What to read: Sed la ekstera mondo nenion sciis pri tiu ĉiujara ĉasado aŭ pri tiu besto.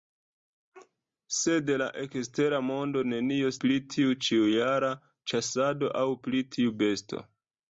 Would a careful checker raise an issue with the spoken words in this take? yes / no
yes